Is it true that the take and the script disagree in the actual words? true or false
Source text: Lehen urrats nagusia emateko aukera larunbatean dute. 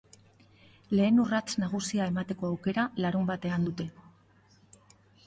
false